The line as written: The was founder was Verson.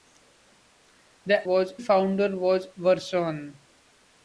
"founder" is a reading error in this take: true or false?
false